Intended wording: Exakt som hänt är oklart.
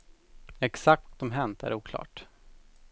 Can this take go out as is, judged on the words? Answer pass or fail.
pass